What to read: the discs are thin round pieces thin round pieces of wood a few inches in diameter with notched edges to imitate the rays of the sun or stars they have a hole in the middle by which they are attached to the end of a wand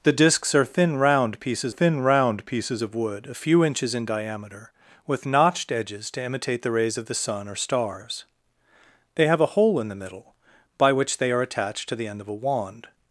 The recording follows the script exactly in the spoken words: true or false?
true